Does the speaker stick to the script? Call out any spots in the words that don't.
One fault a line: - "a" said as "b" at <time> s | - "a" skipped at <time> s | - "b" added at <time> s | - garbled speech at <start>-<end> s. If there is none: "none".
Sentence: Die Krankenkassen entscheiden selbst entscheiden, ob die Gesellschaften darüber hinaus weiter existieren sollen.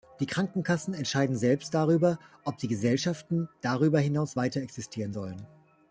- "entscheiden" said as "darüber" at 1.8 s